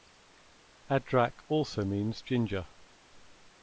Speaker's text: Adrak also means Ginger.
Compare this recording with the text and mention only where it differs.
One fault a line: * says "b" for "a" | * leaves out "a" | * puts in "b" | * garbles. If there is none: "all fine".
all fine